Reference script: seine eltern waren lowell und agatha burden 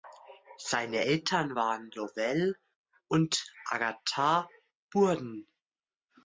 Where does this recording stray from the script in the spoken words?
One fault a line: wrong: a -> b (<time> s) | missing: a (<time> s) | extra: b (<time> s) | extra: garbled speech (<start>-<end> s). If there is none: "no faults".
no faults